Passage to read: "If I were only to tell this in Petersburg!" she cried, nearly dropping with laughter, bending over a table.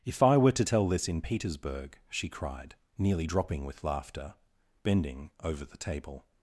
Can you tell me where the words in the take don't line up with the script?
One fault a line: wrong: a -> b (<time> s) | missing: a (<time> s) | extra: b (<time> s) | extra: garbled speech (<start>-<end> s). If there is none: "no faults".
missing: only (0.5 s)
wrong: a -> the (5.6 s)